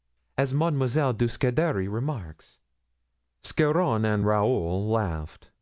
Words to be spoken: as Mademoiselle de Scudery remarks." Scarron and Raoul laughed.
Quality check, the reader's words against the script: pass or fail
pass